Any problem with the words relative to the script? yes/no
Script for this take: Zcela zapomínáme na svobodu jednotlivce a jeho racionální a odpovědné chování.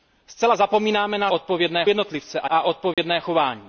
yes